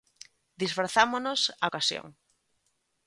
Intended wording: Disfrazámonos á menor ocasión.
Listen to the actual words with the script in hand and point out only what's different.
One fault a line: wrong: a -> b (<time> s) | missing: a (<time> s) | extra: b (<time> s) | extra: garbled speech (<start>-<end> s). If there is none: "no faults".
missing: menor (1.7 s)